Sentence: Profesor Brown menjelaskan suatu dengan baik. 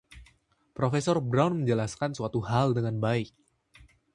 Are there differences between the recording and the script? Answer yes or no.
yes